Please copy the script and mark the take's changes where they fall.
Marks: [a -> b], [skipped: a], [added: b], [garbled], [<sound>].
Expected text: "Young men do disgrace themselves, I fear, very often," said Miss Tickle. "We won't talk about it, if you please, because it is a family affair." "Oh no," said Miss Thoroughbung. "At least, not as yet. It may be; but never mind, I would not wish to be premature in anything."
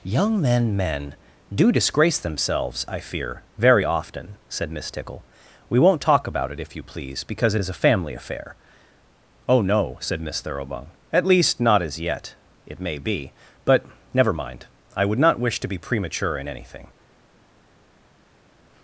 "Young men [added: men] do disgrace themselves, I fear, very often," said Miss Tickle. "We won't talk about it, if you please, because it is a family affair." "Oh no," said Miss Thoroughbung. "At least, not as yet. It may be; but never mind, I would not wish to be premature in anything."